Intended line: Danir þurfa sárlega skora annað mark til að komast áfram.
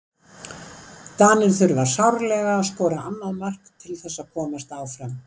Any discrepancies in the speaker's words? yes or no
yes